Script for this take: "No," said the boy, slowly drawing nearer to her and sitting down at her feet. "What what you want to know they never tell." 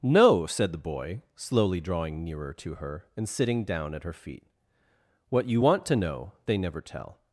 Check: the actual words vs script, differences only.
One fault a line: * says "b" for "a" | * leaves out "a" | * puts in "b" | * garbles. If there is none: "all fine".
* leaves out "what"